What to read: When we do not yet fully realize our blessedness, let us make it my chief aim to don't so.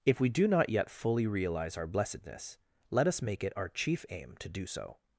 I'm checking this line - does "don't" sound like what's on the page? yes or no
no